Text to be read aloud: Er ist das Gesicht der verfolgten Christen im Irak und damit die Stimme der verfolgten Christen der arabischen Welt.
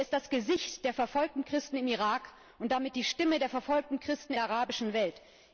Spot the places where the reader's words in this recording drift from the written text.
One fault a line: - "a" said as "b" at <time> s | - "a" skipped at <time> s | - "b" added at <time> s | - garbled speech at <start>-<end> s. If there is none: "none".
none